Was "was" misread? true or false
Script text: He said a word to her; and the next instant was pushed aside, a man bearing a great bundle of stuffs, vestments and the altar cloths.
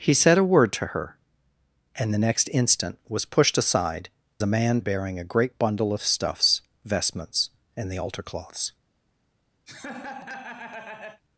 false